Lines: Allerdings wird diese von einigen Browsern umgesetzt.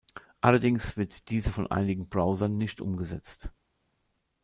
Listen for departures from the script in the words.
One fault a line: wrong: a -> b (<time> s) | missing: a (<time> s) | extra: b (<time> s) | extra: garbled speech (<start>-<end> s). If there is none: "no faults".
extra: nicht (2.6 s)